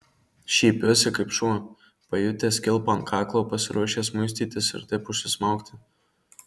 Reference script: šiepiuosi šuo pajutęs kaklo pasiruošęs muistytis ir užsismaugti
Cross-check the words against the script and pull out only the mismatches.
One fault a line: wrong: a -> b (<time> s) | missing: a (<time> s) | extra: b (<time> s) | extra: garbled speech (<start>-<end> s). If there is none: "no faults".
extra: kaip (1.2 s)
extra: kilpą ant (2.7 s)
extra: taip (4.9 s)